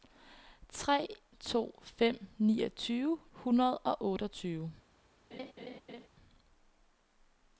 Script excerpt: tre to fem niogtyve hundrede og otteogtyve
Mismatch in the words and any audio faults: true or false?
true